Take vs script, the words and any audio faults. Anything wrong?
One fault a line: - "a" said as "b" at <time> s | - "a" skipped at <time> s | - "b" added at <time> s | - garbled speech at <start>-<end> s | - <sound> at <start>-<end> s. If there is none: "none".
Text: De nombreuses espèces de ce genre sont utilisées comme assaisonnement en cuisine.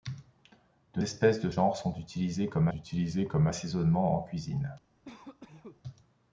- "nombreuses" skipped at 1.0 s
- "ce" skipped at 1.5 s
- "utilisées comme" added at 2.7 s
- cough at 5.0-5.8 s